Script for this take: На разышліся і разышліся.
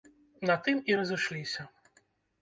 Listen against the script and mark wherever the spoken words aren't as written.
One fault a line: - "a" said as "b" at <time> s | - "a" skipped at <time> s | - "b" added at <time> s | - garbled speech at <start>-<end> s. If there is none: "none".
- "разышліся" said as "тым" at 0.7 s